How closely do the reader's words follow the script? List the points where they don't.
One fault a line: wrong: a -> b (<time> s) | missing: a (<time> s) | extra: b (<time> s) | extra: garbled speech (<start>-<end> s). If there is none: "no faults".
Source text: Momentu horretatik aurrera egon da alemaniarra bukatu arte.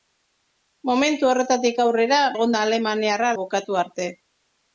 no faults